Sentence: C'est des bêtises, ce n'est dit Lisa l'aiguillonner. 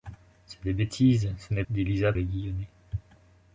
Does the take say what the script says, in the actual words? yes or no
yes